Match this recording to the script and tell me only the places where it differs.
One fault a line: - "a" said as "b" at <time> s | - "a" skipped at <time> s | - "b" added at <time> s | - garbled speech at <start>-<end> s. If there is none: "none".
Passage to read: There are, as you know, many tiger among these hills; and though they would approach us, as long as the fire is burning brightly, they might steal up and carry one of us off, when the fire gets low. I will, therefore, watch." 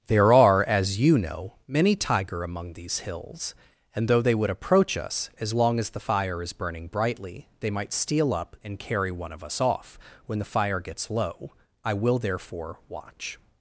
none